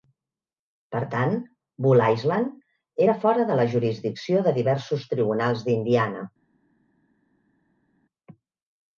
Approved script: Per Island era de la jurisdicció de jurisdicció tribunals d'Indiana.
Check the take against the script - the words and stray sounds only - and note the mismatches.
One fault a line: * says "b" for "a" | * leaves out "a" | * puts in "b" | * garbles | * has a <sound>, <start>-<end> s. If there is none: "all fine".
* puts in "tant Bull"
* puts in "fora"
* says "diversos" for "jurisdicció"